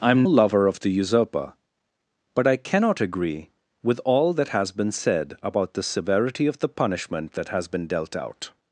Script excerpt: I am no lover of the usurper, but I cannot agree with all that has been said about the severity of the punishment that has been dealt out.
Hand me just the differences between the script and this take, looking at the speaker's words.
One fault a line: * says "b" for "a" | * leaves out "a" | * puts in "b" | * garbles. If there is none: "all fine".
* leaves out "no"